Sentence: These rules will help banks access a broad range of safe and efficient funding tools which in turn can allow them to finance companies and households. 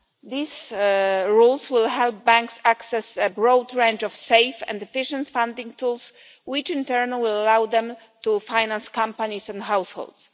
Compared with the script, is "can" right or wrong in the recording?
wrong